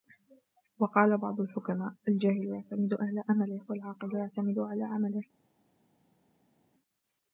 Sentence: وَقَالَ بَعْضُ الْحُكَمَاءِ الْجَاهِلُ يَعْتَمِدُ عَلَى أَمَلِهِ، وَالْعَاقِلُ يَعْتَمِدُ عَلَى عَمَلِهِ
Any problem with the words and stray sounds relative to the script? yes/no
no